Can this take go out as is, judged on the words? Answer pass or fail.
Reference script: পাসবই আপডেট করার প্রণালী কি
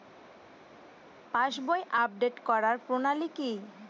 pass